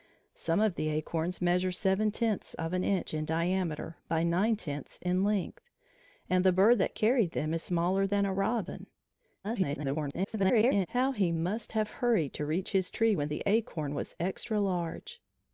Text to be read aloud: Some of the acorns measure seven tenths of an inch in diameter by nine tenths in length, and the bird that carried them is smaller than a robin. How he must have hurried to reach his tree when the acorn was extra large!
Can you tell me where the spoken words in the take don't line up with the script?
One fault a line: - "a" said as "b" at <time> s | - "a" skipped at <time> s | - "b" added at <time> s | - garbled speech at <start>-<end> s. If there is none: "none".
- garbled speech at 9.4-10.9 s